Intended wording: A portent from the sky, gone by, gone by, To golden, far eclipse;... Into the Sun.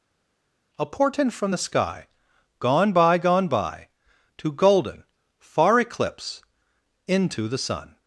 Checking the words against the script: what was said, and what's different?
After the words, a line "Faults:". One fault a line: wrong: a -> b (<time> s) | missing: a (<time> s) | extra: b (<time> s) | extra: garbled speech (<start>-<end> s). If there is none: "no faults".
A portent from the sky, gone by, gone by, To golden, far eclipse;... Into the Sun.
Faults:
no faults